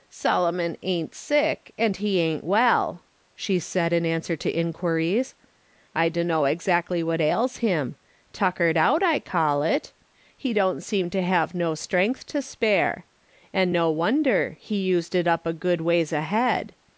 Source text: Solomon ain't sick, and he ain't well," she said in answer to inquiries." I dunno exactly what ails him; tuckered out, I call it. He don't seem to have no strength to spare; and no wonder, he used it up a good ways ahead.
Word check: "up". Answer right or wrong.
right